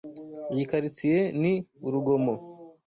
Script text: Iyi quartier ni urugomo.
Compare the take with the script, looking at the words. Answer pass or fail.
pass